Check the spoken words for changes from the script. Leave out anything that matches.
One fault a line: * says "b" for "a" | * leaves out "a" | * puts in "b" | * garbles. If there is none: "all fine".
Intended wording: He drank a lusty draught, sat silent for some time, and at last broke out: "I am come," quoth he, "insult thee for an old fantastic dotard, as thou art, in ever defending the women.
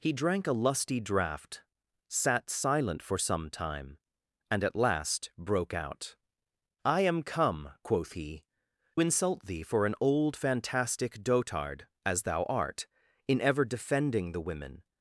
all fine